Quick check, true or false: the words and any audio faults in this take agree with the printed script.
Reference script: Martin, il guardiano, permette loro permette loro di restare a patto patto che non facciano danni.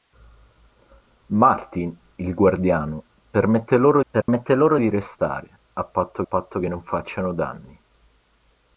false